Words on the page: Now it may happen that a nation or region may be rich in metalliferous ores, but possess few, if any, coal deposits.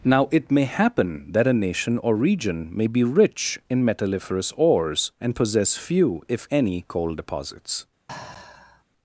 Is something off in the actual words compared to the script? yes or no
yes